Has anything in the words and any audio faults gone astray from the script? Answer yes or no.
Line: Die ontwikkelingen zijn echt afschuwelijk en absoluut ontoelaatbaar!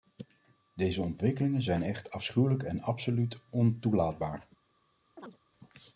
yes